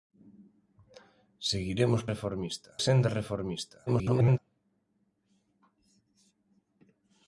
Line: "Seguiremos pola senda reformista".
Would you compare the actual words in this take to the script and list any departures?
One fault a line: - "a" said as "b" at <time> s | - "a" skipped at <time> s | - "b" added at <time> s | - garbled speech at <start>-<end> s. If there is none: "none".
- "pola" said as "reformista" at 2.1 s
- garbled speech at 3.9-4.4 s